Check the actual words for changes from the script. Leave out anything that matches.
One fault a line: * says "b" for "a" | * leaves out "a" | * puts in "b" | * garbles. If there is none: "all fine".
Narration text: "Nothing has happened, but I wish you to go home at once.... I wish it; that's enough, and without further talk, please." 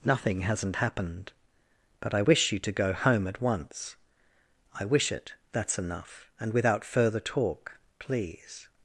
* says "hasn't" for "has"